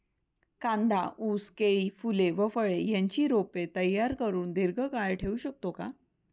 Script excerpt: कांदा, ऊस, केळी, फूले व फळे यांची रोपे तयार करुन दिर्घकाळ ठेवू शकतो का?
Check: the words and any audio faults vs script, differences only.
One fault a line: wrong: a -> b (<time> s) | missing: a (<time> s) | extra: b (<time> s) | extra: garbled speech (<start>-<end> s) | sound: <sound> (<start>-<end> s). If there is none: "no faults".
no faults